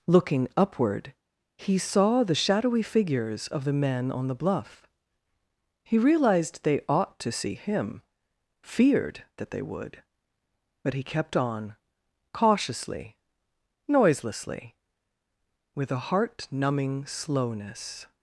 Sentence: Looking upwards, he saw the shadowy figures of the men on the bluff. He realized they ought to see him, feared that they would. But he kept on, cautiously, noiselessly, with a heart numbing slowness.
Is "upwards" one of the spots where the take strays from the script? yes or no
yes